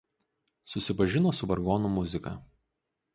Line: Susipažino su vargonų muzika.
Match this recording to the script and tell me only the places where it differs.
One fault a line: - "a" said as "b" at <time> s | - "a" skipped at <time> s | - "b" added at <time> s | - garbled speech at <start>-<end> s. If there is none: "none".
none